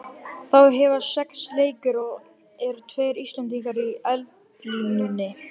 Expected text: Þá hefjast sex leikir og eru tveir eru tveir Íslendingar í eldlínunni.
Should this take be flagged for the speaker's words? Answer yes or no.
yes